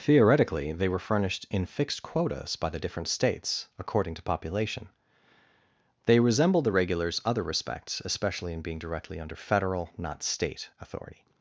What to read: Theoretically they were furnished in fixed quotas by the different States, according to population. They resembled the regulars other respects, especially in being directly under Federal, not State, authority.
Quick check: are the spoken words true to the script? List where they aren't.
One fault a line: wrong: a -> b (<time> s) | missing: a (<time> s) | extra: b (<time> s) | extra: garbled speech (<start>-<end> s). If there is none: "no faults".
no faults